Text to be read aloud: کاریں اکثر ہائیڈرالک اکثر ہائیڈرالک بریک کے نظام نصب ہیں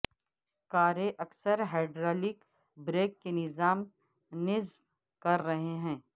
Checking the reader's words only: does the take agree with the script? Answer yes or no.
no